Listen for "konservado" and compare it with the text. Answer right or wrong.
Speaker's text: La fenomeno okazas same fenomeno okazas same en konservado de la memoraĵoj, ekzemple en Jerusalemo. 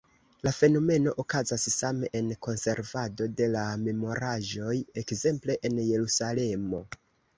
right